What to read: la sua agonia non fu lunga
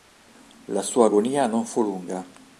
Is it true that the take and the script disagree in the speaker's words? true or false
false